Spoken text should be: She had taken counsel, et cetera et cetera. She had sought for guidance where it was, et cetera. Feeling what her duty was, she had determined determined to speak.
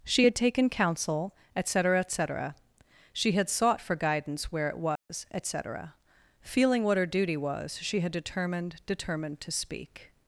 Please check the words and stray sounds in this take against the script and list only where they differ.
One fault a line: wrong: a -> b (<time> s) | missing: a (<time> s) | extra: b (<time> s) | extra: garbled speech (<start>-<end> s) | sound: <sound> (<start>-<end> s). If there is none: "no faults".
sound: dropout (5.0-5.1 s)